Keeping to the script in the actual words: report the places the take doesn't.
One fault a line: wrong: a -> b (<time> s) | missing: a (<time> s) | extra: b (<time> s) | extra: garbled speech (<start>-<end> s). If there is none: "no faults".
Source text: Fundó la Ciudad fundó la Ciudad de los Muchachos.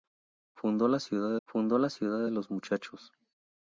no faults